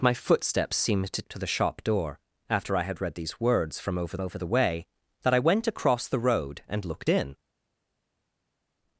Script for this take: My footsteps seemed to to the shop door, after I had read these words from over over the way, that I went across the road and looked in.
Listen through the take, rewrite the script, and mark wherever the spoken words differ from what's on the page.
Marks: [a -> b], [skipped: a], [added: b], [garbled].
My footsteps seemed to to the shop door, after I had read these words from over over the way, that I went across the road and looked in.